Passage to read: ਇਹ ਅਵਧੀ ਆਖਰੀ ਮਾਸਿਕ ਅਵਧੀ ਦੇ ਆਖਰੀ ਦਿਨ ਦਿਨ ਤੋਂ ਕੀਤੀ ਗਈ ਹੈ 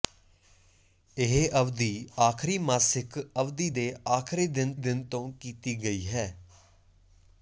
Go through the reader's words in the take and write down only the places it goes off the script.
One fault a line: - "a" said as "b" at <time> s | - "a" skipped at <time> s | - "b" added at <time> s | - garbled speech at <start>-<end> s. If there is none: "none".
none